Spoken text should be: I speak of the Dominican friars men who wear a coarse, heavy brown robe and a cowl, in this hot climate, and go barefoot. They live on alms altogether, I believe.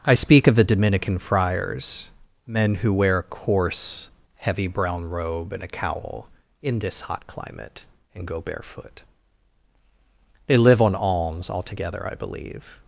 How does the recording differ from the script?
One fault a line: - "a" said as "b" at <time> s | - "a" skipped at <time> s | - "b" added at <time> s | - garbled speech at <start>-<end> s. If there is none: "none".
none